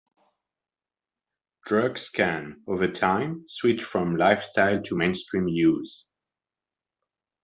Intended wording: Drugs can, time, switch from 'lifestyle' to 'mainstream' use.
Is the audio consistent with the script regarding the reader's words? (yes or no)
no